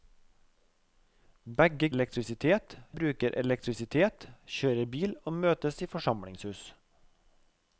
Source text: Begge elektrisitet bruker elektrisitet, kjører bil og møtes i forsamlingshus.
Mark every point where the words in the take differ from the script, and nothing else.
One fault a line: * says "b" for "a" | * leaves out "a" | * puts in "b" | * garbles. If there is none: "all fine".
all fine